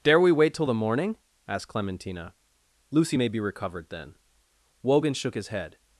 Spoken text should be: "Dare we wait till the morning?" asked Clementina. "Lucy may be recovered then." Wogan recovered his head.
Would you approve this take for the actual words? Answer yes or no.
no